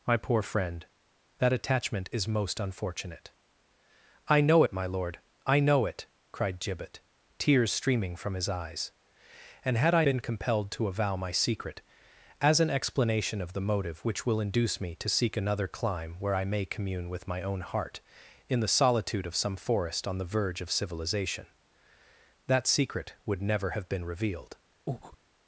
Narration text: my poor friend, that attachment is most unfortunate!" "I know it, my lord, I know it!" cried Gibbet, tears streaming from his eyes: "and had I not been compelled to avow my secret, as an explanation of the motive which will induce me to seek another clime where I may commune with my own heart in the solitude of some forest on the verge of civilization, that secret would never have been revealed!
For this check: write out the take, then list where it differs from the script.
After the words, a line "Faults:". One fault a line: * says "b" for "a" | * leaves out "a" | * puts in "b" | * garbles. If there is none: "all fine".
my poor friend, that attachment is most unfortunate!" "I know it, my lord, I know it!" cried Gibbet, tears streaming from his eyes: "and had I been compelled to avow my secret, as an explanation of the motive which will induce me to seek another clime where I may commune with my own heart in the solitude of some forest on the verge of civilization, that secret would never have been revealed!
Faults:
* leaves out "not"